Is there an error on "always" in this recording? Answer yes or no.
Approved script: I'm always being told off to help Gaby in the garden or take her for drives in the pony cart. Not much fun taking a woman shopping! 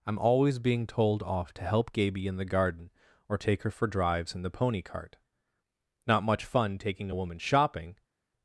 no